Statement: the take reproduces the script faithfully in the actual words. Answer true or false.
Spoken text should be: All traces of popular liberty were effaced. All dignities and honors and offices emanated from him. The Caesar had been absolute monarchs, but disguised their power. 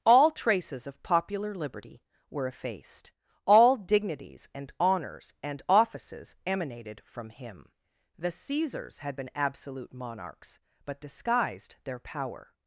false